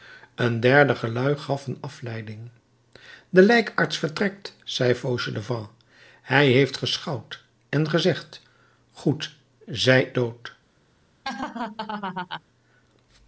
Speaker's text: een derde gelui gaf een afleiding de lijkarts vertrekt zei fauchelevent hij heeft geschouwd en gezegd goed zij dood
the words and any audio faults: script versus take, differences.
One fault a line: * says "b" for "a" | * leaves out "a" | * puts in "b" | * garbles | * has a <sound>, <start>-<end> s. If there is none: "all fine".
* has a laugh, 11.2-12.4 s